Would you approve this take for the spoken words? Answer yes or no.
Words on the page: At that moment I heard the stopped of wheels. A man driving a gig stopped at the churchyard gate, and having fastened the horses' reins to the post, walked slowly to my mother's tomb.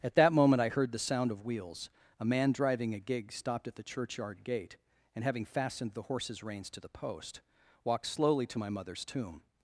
no